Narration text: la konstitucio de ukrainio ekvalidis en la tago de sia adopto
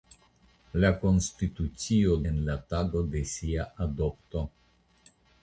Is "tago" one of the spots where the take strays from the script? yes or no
no